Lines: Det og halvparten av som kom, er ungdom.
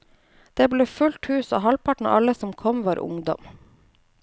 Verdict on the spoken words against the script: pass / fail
fail